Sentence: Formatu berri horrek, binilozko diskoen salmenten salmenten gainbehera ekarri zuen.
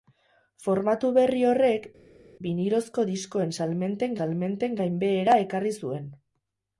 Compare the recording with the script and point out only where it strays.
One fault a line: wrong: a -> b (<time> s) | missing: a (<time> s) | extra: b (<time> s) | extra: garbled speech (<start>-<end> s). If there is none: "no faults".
no faults